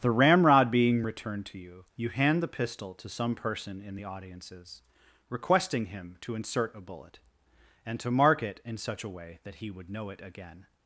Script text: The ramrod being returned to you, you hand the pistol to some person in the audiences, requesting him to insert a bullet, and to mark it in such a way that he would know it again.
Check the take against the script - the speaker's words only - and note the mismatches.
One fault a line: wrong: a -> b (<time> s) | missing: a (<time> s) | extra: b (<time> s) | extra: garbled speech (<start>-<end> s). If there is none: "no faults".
no faults